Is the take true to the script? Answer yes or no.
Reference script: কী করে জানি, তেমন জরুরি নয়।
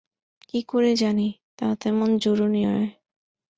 no